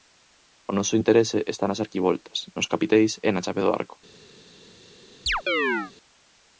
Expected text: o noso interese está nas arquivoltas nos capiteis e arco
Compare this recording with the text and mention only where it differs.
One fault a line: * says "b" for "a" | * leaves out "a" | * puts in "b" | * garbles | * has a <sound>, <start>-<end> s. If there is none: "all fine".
* puts in "na chave do"
* has a chirp, 5.3-5.9 s